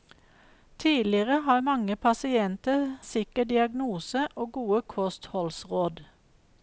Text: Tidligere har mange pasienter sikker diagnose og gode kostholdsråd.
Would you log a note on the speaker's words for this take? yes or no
no